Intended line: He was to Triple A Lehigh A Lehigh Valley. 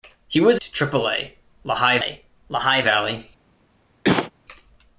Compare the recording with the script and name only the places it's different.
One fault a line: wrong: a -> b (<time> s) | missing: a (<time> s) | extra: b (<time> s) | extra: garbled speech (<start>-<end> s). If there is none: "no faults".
no faults